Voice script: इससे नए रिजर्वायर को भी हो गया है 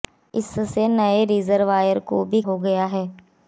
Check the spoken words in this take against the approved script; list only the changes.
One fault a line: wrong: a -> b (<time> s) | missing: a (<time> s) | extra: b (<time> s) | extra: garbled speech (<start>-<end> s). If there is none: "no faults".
no faults